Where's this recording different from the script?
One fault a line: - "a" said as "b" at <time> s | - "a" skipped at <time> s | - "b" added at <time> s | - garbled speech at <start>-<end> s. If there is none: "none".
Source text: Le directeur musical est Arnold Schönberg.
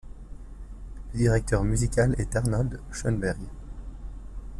none